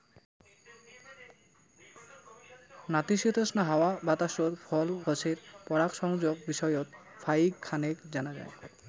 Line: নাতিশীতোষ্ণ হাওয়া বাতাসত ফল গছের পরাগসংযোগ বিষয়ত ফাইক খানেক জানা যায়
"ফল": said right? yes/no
yes